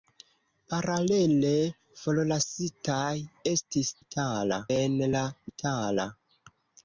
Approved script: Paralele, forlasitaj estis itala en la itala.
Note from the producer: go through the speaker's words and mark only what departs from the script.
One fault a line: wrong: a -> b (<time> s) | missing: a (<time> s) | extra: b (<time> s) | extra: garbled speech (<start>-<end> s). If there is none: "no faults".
no faults